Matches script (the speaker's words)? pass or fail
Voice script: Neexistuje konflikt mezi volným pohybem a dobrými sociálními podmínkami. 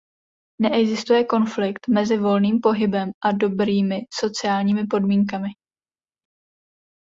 pass